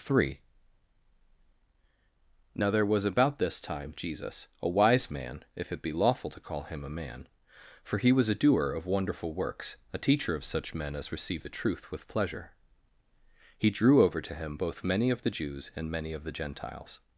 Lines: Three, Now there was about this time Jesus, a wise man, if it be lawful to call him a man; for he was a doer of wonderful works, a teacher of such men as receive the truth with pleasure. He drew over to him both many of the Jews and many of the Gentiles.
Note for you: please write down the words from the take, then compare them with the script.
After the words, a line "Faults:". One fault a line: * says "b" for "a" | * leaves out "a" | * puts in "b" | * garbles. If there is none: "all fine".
Three, Now there was about this time Jesus, a wise man, if it be lawful to call him a man; for he was a doer of wonderful works, a teacher of such men as receive the truth with pleasure. He drew over to him both many of the Jews and many of the Gentiles.
Faults:
all fine